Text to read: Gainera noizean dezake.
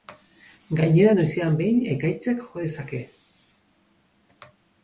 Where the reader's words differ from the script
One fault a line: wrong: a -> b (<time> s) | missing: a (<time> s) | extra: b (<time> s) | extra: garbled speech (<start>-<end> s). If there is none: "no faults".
extra: behin ekaitzak jo (1.6 s)